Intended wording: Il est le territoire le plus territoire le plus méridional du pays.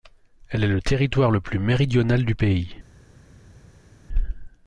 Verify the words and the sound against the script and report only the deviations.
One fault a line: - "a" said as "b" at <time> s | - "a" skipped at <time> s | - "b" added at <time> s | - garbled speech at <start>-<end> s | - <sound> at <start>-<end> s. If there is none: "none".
- "Il" said as "Elle" at 0.5 s
- "territoire le plus" skipped at 1.6 s